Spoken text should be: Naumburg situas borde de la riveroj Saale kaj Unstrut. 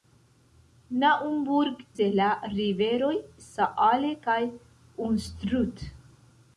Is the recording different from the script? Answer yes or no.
yes